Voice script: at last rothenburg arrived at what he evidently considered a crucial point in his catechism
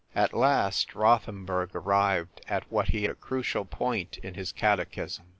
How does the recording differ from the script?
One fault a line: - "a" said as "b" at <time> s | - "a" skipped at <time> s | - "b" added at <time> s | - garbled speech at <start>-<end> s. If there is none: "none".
- "evidently considered" skipped at 3.1 s